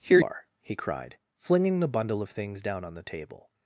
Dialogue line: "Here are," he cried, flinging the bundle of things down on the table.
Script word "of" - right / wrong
right